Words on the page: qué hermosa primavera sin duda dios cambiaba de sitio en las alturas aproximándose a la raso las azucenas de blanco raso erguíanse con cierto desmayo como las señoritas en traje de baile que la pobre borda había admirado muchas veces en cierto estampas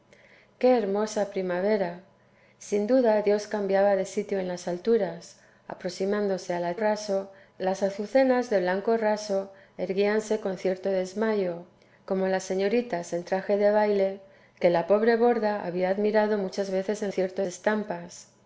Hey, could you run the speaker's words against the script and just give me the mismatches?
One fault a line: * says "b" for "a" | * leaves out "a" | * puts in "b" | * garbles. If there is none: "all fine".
all fine